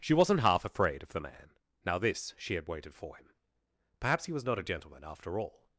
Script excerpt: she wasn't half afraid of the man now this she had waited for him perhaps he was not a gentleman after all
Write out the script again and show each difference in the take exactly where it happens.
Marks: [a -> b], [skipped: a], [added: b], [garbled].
she wasn't half afraid of the man now this she had waited for him perhaps he was not a gentleman after all